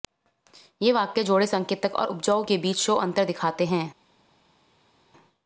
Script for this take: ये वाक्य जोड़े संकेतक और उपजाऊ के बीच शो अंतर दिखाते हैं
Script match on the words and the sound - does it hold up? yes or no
yes